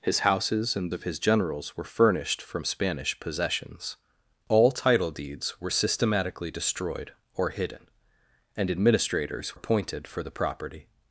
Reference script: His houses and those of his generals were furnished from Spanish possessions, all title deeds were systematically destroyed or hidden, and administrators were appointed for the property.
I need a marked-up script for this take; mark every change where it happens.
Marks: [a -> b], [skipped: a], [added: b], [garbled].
His houses and [skipped: those] of his generals were furnished from Spanish possessions, all title deeds were systematically destroyed or hidden, and administrators [skipped: were] appointed for the property.